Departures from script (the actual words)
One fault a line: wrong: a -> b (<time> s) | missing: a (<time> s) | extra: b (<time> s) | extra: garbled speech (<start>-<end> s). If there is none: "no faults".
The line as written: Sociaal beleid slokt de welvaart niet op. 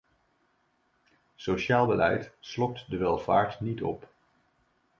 no faults